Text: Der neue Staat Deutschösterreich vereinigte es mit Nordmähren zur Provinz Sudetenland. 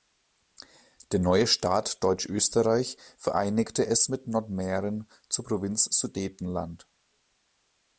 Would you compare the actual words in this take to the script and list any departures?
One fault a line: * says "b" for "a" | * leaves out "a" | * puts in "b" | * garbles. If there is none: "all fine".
all fine